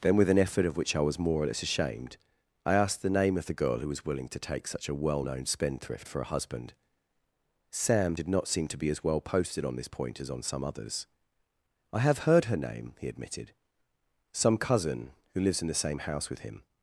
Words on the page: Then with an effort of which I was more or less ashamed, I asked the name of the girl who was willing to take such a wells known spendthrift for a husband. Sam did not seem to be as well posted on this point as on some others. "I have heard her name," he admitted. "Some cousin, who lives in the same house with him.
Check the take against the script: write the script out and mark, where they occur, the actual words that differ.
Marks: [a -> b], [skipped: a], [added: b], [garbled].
Then with an effort of which I was more or less ashamed, I asked the name of the girl who was willing to take such a [wells -> well] known spendthrift for a husband. Sam did not seem to be as well posted on this point as on some others. "I have heard her name," he admitted. "Some cousin, who lives in the same house with him.